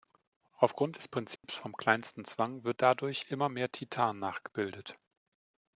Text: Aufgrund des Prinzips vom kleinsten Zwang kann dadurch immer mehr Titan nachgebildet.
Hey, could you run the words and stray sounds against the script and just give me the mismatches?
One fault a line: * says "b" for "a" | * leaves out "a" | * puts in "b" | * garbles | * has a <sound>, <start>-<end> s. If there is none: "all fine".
* has a dropout, 1.4-1.4 s
* says "wird" for "kann"